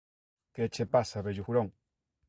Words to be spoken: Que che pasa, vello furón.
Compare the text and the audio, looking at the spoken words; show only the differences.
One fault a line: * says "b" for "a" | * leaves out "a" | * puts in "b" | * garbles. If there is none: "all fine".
all fine